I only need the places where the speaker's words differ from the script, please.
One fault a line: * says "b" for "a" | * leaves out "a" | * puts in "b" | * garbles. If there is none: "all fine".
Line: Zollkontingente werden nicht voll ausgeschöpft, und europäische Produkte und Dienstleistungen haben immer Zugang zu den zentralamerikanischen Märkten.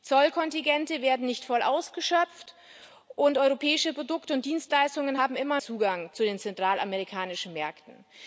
all fine